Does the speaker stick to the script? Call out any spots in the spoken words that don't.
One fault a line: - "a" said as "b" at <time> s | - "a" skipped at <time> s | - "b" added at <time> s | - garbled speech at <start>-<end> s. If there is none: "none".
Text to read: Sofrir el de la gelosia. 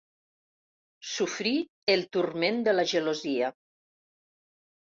- "turment" added at 2.2 s